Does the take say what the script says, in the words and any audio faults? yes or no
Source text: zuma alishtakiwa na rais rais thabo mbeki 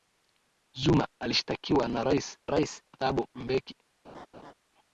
no